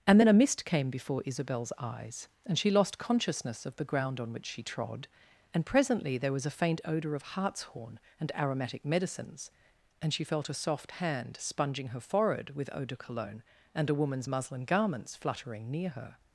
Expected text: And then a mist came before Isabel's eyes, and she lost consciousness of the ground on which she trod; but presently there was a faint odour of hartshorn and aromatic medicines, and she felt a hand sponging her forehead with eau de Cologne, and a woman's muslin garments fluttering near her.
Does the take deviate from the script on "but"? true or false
true